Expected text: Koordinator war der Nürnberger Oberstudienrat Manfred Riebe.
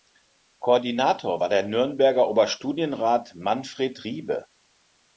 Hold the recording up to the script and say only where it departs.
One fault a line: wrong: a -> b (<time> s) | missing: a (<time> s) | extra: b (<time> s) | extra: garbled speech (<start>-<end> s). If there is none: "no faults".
no faults